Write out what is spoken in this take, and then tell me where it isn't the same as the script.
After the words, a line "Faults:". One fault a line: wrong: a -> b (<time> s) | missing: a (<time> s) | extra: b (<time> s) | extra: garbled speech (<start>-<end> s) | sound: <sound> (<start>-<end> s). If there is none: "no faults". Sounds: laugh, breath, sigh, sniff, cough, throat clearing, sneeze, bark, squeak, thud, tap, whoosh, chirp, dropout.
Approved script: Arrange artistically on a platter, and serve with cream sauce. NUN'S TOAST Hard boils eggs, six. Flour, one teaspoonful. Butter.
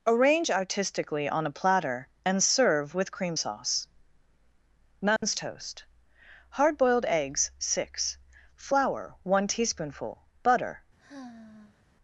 Arrange artistically on a platter, and serve with cream sauce. NUN'S TOAST Hard boiled eggs, six. Flour, one teaspoonful. Butter.
Faults:
sound: dropout (5.2-5.2 s)
wrong: boils -> boiled (6.8 s)
sound: sigh (11.0-11.8 s)